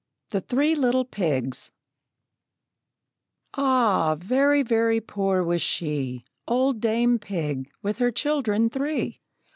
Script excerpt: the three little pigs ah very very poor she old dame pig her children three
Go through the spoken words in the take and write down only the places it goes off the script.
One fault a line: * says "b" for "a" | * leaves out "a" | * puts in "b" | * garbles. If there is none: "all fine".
* puts in "was"
* puts in "with"